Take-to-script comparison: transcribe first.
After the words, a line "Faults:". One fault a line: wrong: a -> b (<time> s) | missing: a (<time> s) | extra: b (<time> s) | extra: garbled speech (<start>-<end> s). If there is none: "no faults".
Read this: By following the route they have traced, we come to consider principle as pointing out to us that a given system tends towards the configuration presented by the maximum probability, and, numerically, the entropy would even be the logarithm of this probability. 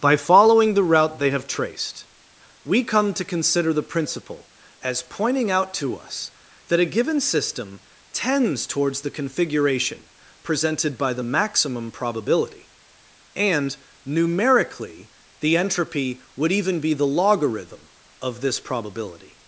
By following the route they have traced, we come to consider the principle as pointing out to us that a given system tends towards the configuration presented by the maximum probability, and, numerically, the entropy would even be the logarithm of this probability.
Faults:
extra: the (3.7 s)